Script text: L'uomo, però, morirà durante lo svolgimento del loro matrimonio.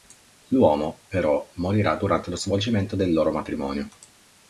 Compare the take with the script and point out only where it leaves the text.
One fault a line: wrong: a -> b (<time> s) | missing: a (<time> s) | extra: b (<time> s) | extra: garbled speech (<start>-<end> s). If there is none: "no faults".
no faults